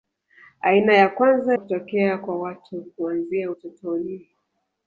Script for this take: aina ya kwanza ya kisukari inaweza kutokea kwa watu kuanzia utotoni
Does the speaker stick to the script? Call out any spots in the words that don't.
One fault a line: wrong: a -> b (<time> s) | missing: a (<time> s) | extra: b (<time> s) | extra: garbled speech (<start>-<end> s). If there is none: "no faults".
missing: ya kisukari inaweza (1.6 s)